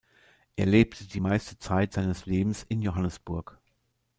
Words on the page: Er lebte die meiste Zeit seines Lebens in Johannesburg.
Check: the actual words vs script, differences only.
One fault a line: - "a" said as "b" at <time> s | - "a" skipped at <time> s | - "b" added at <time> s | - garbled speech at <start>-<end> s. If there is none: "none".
none